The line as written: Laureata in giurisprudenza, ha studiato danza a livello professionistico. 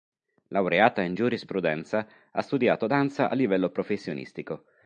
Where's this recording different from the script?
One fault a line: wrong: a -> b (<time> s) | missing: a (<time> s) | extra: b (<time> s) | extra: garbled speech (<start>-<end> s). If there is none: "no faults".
no faults